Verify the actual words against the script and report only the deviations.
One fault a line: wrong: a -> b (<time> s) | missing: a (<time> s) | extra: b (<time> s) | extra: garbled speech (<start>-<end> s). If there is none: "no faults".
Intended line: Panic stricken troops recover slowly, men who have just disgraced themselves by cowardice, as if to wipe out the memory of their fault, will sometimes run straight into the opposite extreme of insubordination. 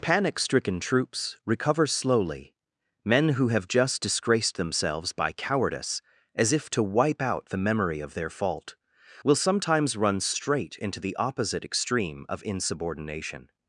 no faults